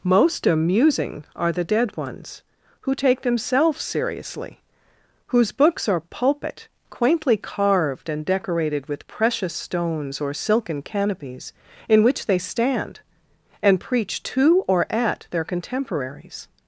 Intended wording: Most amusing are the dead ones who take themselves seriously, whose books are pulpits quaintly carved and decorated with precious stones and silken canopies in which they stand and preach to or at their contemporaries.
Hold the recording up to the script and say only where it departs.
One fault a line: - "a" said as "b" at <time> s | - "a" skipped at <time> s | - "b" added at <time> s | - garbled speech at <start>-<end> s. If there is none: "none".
- "pulpits" said as "pulpit" at 6.0 s
- "and" said as "or" at 10.2 s